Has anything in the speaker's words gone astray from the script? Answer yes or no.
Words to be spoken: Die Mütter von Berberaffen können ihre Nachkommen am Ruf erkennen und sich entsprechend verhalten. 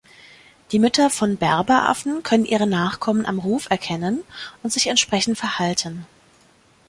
no